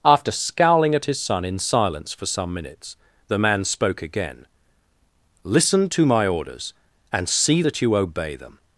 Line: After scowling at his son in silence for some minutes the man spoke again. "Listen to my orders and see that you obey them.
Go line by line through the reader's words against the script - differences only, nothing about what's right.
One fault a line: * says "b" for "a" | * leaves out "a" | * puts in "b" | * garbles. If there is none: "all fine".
all fine